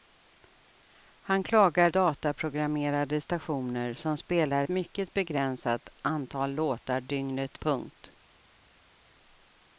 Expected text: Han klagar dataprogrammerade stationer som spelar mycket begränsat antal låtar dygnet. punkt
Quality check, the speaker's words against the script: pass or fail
pass